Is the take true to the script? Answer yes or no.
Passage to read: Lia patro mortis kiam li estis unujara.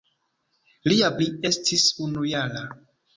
no